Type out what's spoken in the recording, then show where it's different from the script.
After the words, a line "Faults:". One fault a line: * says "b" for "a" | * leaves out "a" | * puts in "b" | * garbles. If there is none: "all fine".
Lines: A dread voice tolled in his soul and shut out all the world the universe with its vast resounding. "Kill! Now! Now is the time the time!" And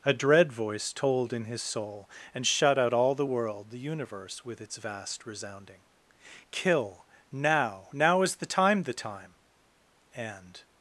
A dread voice tolled in his soul and shut out all the world the universe with its vast resounding. "Kill! Now! Now is the time the time!" And
Faults:
all fine